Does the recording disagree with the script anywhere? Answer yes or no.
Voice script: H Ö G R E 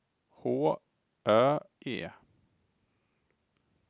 yes